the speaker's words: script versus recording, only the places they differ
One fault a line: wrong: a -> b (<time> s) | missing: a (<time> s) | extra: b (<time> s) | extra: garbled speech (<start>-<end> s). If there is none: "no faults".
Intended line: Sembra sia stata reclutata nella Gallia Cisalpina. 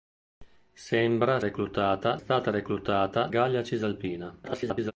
wrong: sia -> reclutata (1.4 s)
missing: nella (3.3 s)
extra: garbled speech (4.4-4.9 s)